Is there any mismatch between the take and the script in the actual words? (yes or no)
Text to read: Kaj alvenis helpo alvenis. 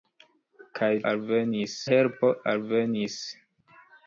no